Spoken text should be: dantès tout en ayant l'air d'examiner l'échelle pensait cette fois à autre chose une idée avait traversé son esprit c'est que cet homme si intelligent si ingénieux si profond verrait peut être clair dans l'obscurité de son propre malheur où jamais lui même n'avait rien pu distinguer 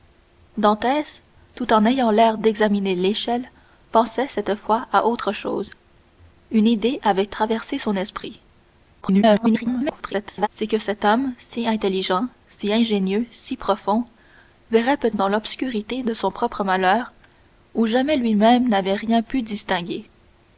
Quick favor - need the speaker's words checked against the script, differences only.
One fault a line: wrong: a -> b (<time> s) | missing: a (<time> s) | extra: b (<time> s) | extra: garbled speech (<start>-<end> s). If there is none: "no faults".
extra: garbled speech (9.0-10.5 s)
missing: être clair (15.1 s)